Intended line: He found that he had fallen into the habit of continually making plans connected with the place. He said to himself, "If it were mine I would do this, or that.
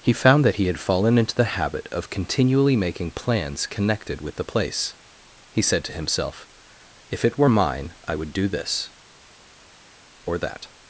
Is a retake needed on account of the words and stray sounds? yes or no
no